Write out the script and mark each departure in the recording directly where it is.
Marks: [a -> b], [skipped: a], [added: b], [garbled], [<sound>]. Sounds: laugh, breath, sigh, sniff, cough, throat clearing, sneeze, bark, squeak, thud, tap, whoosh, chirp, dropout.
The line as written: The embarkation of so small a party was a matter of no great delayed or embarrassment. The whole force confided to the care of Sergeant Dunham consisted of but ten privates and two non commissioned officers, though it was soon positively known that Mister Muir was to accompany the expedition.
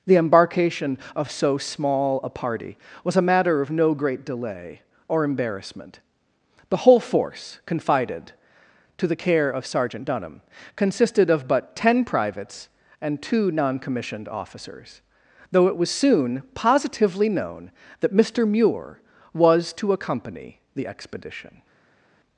The embarkation of so small a party was a matter of no great [delayed -> delay] or embarrassment. The whole force confided to the care of Sergeant Dunham consisted of but ten privates and two non commissioned officers, though it was soon positively known that Mister Muir was to accompany the expedition.